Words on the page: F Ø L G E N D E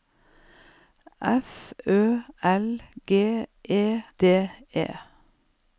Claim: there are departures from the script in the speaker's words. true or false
true